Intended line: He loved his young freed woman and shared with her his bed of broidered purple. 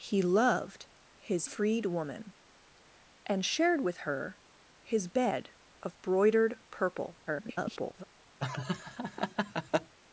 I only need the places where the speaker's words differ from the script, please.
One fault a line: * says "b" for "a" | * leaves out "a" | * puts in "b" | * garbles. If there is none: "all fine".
* leaves out "young"
* garbles